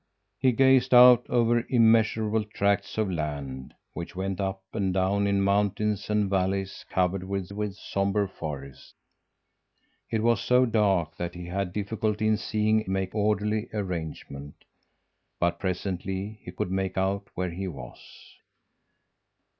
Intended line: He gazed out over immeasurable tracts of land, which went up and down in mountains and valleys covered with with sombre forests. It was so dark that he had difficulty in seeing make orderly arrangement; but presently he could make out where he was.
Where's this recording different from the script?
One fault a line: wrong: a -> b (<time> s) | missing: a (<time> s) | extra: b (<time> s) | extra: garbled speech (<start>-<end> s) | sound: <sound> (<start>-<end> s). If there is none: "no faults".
no faults